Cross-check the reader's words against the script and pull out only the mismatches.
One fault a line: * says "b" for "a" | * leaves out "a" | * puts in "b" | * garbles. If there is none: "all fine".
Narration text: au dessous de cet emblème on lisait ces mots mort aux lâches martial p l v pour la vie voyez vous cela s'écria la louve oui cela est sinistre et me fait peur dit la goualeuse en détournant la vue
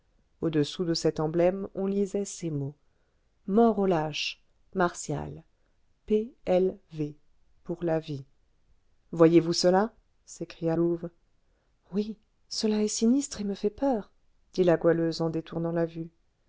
* leaves out "la"